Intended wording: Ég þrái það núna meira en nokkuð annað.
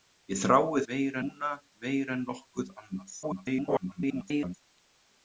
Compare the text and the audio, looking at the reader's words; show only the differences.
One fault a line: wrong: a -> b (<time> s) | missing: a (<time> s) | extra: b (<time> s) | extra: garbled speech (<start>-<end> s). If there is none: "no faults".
wrong: það -> meira (0.9 s)
extra: garbled speech (3.2-4.5 s)